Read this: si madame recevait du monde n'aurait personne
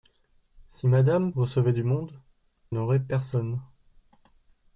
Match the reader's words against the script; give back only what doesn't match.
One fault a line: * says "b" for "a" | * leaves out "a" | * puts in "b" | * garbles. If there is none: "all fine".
all fine